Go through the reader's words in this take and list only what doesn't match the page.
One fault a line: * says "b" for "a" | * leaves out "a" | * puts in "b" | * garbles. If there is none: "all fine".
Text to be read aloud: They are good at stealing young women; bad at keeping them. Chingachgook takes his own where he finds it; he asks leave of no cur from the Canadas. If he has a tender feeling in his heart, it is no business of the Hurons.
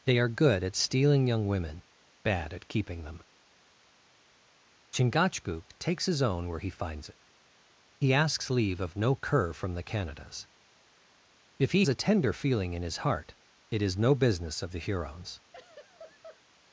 * leaves out "has"